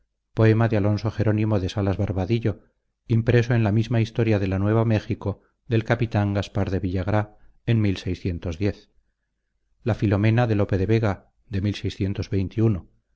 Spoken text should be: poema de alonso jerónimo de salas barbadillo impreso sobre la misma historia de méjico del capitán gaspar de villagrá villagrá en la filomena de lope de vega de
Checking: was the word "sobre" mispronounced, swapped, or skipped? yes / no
yes